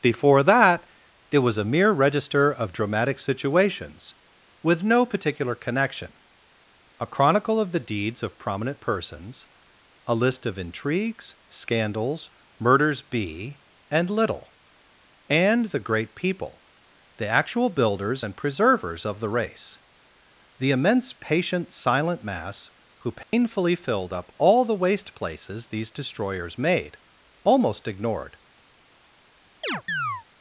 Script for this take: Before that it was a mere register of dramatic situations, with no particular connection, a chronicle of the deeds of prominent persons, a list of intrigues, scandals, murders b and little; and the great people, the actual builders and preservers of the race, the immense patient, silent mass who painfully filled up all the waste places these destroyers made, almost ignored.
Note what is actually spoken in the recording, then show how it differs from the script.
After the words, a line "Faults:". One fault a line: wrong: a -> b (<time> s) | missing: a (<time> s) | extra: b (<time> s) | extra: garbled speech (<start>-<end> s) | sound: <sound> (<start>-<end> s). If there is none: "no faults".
Before that it was a mere register of dramatic situations, with no particular connection, a chronicle of the deeds of prominent persons, a list of intrigues, scandals, murders b and little; and the great people, the actual builders and preservers of the race, the immense patient, silent mass who painfully filled up all the waste places these destroyers made, almost ignored.
Faults:
sound: dropout (23.2-23.3 s)
sound: chirp (29.6-30.2 s)